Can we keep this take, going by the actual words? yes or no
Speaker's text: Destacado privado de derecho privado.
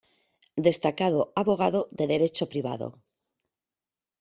no